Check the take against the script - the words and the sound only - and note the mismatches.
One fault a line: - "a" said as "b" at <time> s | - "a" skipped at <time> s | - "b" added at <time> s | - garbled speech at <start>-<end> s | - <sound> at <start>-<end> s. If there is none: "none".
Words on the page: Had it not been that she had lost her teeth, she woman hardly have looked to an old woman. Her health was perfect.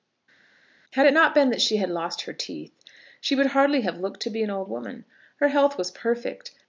- "woman" said as "would" at 3.3 s
- "be" added at 4.3 s